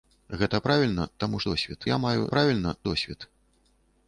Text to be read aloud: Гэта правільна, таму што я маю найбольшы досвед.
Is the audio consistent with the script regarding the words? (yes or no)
no